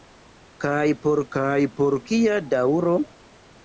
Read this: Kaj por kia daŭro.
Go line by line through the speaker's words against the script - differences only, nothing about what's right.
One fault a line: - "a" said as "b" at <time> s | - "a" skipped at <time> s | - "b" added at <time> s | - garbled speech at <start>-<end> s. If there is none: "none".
- "kaj por" added at 1.4 s